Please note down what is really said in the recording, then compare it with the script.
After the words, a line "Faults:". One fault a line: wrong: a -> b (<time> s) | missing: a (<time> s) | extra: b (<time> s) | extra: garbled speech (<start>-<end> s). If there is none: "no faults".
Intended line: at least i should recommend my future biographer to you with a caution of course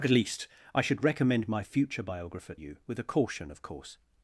at least i should recommend my future biographer you with a caution of course
Faults:
missing: to (2.5 s)